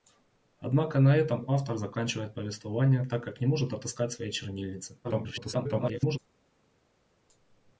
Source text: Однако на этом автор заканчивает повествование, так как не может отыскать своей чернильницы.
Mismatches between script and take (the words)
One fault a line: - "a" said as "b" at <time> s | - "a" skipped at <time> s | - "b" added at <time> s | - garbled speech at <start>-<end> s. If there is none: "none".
- garbled speech at 5.0-6.2 s